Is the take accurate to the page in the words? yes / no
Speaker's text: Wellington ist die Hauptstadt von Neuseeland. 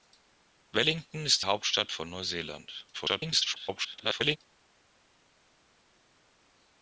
no